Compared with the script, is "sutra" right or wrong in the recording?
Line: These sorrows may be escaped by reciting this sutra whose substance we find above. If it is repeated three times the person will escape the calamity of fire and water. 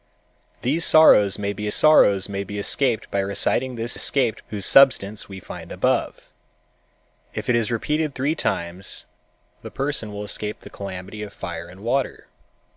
wrong